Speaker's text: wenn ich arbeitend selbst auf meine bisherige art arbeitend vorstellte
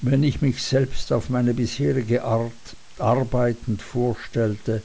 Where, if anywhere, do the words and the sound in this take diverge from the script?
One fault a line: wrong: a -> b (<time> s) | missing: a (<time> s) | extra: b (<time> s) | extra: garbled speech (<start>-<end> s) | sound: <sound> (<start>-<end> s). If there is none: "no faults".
wrong: arbeitend -> mich (0.4 s)